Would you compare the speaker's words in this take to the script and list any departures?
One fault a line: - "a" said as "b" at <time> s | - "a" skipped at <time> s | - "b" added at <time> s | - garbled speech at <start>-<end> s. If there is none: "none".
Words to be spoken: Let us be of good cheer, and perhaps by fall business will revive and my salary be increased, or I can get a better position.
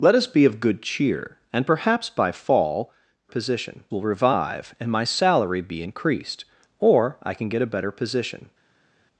- "business" said as "position" at 3.3 s